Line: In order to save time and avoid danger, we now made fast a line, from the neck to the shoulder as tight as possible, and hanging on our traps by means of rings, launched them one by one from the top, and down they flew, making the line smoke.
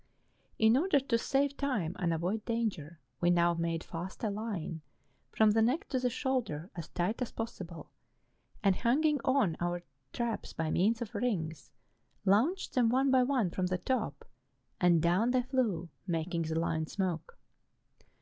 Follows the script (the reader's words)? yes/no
yes